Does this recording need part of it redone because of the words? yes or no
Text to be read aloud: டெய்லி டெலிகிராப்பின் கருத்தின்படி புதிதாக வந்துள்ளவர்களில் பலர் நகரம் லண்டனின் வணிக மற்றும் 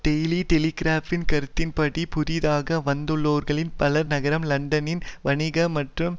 no